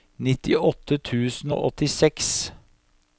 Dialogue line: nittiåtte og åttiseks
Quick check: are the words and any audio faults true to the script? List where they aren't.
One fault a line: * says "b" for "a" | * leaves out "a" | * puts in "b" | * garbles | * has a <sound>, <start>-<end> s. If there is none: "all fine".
* puts in "tusen"